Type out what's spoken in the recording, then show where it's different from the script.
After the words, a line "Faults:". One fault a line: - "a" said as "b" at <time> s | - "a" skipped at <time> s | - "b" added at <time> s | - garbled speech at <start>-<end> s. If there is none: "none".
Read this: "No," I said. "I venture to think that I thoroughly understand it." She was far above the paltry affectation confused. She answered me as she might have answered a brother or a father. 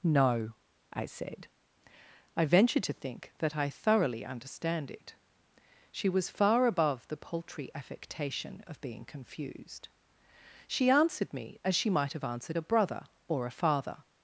"No," I said. "I venture to think that I thoroughly understand it." She was far above the paltry affectation of being confused. She answered me as she might have answered a brother or a father.
Faults:
- "of being" added at 8.7 s